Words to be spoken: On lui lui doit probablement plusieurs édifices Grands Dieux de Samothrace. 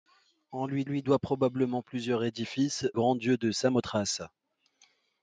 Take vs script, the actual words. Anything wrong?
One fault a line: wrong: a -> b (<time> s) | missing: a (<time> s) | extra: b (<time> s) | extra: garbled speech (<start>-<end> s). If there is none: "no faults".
no faults